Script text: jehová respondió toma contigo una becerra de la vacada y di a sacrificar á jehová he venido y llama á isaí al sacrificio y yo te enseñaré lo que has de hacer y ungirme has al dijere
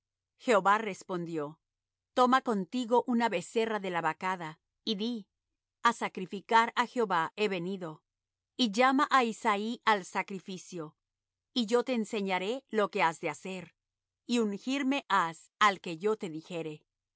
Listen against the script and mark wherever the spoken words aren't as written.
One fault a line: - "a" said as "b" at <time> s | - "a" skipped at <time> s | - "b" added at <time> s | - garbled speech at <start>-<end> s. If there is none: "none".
- "que yo te" added at 15.8 s